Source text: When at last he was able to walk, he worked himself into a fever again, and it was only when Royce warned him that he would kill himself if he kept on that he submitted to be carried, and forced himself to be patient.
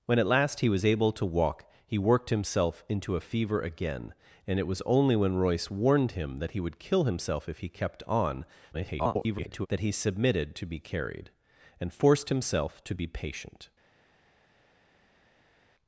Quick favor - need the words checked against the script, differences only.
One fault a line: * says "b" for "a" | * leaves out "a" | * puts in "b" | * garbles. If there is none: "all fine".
* garbles